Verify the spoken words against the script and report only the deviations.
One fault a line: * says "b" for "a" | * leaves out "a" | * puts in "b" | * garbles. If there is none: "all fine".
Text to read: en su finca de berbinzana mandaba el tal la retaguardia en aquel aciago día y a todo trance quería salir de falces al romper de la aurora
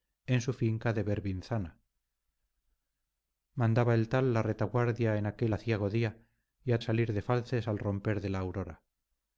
* leaves out "todo trance quería"